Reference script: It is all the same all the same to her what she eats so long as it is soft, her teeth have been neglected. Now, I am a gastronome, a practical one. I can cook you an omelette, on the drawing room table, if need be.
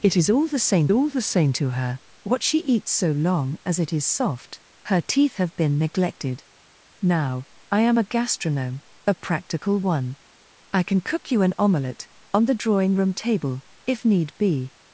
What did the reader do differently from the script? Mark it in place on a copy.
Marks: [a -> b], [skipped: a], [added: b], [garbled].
It is all the same all the same to her what she eats so long as it is soft, her teeth have been neglected. Now, I am a gastronome, a practical one. I can cook you an omelette, on the drawing room table, if need be.